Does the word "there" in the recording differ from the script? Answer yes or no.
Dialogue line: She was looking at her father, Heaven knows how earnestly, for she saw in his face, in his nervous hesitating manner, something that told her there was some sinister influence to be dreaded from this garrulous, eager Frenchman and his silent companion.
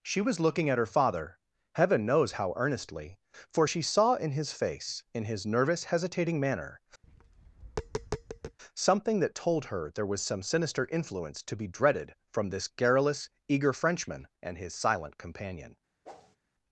no